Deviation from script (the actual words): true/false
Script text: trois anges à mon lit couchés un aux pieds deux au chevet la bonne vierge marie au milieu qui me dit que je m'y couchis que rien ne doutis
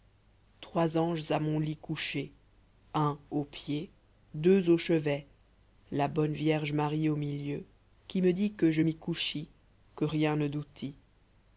false